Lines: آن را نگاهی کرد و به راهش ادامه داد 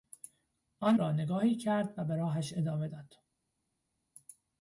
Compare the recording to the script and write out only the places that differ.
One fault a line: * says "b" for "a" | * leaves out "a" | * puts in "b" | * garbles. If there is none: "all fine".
all fine